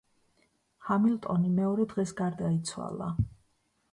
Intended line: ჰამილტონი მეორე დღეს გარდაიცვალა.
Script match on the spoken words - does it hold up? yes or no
yes